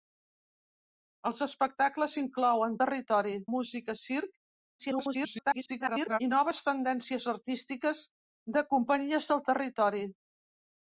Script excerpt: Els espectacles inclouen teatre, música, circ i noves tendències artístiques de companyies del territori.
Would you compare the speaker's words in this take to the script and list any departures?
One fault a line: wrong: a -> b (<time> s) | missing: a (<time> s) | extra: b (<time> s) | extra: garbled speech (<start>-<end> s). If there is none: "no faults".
wrong: teatre -> territori (2.9 s)
extra: garbled speech (4.8-6.2 s)